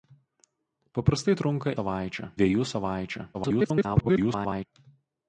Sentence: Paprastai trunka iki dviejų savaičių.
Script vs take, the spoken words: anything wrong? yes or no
yes